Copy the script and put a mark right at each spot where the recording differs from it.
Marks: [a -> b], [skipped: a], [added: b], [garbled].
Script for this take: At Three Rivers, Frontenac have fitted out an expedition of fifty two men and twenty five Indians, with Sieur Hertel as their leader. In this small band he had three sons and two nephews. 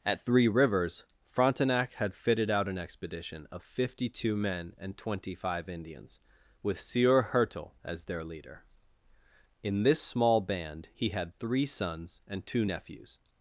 At Three Rivers, Frontenac [have -> had] fitted out an expedition of fifty two men and twenty five Indians, with Sieur Hertel as their leader. In this small band he had three sons and two nephews.